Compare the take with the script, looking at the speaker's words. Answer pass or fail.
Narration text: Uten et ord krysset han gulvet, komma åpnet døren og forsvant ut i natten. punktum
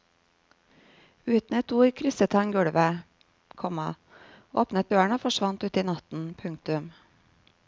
pass